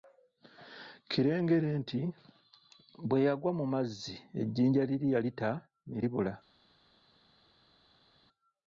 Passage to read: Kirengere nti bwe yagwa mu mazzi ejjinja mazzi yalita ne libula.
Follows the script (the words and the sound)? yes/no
no